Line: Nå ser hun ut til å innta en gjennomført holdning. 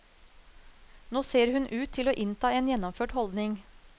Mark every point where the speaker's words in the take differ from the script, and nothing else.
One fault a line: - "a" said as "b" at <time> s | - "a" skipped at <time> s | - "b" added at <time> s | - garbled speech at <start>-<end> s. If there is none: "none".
none